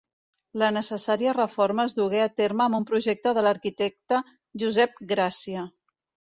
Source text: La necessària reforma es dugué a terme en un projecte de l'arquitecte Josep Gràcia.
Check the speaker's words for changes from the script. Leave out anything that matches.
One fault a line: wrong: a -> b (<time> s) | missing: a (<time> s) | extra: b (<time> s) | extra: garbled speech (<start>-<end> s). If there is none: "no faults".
wrong: en -> amb (2.7 s)